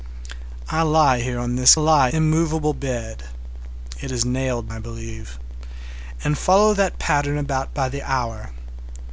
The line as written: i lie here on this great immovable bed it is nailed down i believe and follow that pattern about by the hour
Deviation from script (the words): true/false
true